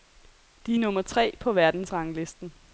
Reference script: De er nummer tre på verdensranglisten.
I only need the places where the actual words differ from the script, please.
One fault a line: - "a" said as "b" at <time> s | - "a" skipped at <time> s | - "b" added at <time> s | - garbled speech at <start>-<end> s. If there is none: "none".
none